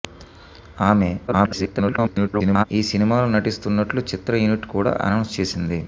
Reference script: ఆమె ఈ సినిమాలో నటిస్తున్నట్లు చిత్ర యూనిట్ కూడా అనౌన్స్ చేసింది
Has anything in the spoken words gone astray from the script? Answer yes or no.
yes